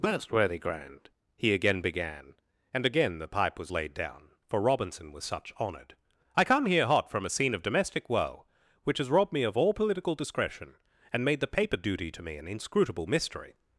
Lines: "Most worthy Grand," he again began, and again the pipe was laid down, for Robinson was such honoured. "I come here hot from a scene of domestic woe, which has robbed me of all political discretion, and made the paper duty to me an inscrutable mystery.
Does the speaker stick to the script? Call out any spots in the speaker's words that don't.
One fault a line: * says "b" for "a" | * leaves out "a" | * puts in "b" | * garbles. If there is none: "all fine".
all fine